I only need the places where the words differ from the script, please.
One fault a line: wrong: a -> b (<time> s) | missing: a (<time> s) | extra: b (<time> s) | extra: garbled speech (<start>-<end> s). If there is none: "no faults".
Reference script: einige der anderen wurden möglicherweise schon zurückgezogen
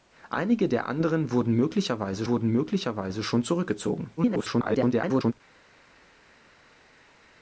extra: wurden möglicherweise (2.3 s)
extra: garbled speech (4.2-5.3 s)